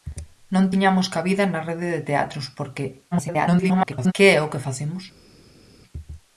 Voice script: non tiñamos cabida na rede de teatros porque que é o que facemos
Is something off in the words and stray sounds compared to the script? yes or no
yes